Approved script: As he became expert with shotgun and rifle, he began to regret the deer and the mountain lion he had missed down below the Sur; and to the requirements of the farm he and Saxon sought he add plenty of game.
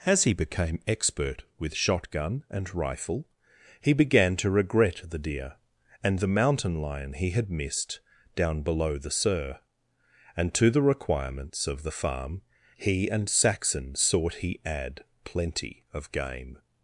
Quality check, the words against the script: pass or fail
pass